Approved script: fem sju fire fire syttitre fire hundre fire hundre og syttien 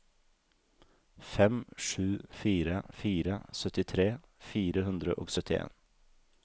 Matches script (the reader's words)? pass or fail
fail